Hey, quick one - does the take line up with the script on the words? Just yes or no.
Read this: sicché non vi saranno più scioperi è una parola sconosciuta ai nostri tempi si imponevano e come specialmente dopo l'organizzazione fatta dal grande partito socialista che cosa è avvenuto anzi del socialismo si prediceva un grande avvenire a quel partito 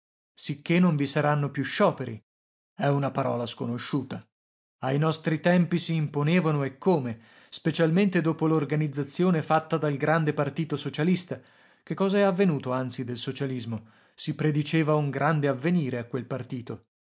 yes